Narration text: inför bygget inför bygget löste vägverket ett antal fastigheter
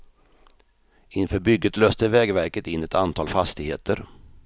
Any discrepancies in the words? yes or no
yes